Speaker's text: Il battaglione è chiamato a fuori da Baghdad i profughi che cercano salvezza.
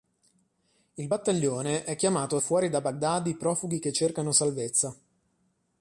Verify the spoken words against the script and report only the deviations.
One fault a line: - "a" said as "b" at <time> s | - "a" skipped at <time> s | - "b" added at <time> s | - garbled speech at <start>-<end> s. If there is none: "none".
none